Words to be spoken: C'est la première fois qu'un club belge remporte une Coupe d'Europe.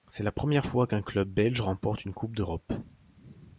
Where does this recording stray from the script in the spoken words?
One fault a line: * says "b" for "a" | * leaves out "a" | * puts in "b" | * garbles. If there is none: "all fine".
all fine